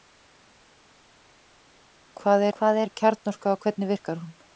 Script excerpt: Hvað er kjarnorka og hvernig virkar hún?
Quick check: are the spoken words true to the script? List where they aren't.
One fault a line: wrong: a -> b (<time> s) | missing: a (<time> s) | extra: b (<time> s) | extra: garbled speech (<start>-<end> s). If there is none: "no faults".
extra: hvað (2.6 s)